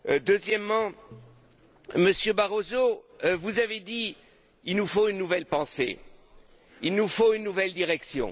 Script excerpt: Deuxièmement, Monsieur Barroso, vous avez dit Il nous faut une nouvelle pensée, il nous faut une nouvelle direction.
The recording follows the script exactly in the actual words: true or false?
true